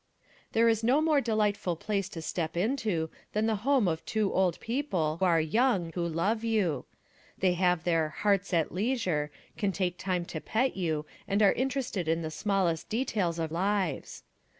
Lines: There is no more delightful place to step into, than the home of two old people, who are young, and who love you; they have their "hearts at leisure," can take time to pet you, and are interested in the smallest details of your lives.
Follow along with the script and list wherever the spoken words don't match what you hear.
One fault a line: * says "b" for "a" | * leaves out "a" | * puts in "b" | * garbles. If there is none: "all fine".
* leaves out "who"
* leaves out "and"
* leaves out "your"